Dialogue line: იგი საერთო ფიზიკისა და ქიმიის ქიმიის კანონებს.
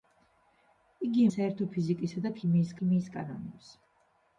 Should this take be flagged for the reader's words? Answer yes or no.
no